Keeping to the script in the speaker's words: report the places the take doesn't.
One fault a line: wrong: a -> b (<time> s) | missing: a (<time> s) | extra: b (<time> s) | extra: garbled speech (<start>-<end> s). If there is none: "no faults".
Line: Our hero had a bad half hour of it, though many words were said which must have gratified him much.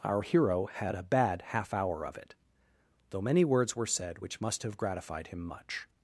no faults